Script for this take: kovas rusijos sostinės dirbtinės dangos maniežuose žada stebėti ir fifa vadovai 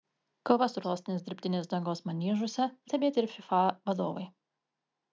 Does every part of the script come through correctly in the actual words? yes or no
no